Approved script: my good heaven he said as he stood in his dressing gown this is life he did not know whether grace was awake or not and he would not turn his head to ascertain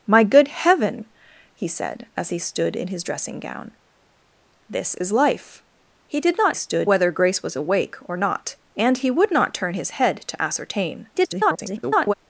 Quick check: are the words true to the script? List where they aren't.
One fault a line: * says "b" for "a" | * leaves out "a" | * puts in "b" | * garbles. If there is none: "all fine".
* says "stood" for "know"
* garbles